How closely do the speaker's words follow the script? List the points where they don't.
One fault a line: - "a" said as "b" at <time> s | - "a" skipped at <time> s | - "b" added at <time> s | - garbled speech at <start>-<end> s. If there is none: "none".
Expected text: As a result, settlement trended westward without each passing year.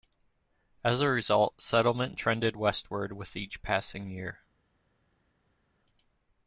- "without" said as "with" at 3.1 s